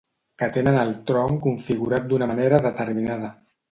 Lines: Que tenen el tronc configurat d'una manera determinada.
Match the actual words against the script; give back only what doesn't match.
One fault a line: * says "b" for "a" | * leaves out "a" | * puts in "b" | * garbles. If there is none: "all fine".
all fine